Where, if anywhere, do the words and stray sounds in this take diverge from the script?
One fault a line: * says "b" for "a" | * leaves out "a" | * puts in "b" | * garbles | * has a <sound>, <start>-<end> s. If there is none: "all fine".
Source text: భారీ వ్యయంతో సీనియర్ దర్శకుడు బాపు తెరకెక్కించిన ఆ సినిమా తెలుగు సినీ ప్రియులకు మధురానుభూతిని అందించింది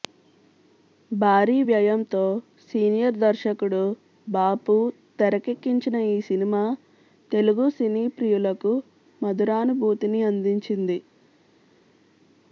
* says "ఈ" for "ఆ"